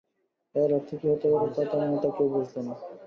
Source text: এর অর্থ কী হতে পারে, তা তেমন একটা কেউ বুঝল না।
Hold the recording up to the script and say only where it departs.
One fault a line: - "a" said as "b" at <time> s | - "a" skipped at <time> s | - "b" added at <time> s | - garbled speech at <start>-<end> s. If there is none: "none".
none